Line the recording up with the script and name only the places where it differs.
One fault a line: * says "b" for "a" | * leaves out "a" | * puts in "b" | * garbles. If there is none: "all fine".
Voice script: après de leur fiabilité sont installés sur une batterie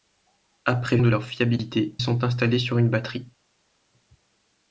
all fine